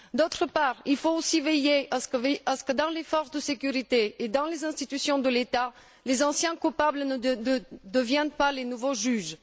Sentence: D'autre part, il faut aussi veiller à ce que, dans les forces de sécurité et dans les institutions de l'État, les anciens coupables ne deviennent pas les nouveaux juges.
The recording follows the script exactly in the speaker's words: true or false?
true